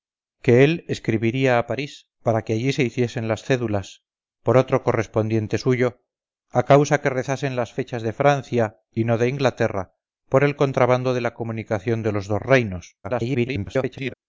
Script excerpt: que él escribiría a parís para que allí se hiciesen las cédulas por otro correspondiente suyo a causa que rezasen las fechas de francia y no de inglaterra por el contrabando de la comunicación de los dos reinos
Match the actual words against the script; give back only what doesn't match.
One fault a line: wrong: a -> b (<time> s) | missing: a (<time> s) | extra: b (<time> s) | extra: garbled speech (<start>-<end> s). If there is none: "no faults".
extra: garbled speech (13.0-14.1 s)